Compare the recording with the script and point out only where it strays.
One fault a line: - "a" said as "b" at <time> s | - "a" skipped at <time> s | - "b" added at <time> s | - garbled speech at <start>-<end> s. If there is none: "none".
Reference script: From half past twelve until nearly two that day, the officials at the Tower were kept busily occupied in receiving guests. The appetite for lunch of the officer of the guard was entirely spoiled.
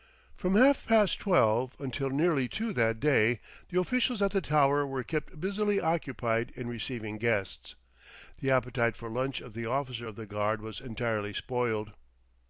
none